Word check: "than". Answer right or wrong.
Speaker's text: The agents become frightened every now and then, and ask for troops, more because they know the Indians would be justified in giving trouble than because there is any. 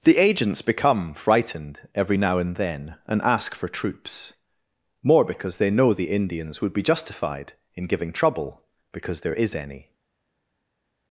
wrong